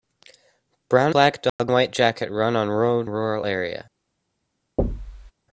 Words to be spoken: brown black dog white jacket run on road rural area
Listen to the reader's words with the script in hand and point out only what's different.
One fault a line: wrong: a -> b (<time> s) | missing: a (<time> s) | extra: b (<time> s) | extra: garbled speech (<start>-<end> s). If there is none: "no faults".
no faults